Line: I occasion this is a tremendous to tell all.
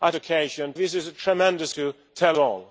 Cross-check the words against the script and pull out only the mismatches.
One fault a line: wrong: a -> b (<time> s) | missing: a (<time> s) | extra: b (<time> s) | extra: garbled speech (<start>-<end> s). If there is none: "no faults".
no faults